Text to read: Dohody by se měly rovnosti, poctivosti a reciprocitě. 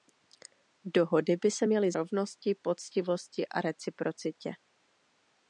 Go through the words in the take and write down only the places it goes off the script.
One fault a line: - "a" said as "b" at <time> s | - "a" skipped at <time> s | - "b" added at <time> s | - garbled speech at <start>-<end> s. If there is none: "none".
none